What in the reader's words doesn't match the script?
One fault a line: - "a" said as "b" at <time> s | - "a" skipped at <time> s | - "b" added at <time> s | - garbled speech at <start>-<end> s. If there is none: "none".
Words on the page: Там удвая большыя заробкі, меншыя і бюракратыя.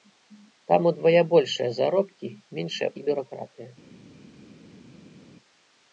none